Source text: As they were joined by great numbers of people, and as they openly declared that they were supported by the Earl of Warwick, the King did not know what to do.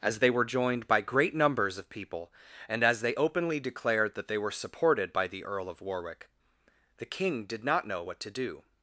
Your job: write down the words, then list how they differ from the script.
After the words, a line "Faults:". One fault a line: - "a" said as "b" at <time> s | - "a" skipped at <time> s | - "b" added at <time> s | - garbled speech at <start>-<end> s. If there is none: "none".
As they were joined by great numbers of people, and as they openly declared that they were supported by the Earl of Warwick, the King did not know what to do.
Faults:
none